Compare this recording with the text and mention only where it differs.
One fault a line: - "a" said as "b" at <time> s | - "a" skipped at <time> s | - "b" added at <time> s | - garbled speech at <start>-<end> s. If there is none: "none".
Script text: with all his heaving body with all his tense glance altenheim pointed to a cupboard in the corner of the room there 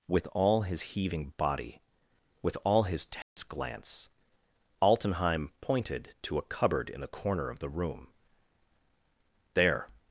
none